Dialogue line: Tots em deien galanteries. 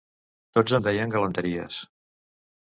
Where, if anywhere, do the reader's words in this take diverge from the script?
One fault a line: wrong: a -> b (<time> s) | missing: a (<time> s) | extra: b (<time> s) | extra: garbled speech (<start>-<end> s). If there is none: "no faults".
no faults